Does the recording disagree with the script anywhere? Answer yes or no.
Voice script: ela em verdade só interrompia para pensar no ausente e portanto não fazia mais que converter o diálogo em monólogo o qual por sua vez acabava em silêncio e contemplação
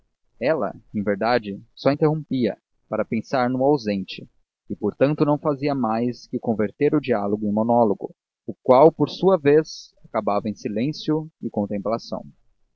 no